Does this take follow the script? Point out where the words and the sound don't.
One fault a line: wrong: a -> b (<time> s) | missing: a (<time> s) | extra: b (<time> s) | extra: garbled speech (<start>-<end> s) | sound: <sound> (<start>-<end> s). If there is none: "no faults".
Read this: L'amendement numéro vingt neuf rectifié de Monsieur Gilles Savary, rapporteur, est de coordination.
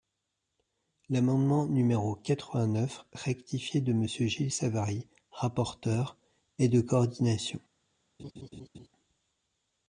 extra: quatre (2.1 s)
sound: laugh (8.2-8.9 s)